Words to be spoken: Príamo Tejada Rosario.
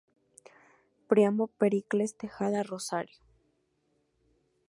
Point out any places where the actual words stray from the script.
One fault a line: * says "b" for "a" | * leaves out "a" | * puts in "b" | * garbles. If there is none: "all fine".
* puts in "Pericles"